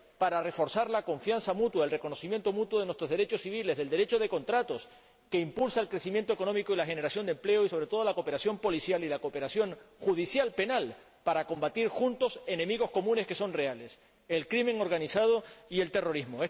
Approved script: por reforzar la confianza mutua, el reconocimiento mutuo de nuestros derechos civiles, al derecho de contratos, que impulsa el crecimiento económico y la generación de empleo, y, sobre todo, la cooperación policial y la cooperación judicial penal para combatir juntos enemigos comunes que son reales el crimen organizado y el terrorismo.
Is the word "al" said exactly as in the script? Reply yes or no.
no